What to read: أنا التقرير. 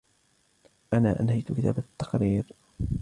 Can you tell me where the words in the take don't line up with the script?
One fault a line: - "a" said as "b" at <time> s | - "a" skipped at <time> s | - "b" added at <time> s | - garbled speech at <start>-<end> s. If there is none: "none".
- "أنهيت كتابة" added at 1.2 s